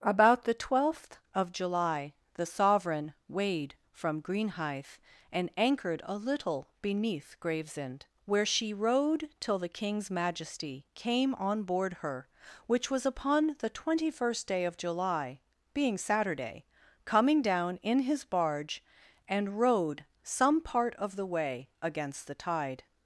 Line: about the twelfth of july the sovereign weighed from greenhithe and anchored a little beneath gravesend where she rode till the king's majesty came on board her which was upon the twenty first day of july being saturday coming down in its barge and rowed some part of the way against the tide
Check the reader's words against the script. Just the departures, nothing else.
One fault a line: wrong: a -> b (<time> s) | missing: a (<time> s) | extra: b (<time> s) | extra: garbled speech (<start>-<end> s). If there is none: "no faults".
wrong: its -> his (18.0 s)